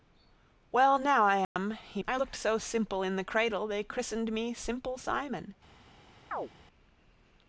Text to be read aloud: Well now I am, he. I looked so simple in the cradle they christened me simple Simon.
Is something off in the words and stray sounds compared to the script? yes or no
yes